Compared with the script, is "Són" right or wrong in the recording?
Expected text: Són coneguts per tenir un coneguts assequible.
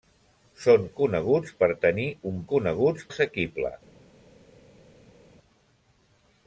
right